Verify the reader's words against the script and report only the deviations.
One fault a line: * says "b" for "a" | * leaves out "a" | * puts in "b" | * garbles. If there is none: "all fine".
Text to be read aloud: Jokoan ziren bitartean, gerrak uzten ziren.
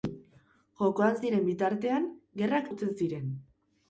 all fine